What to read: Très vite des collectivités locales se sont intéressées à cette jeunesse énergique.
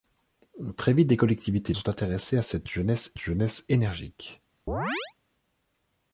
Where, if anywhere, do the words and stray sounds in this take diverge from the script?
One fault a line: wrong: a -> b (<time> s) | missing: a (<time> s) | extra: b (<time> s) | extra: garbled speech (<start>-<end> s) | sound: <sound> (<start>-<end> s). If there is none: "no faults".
missing: locales se (1.8 s)
extra: jeunesse (3.2 s)
sound: chirp (4.7-5.1 s)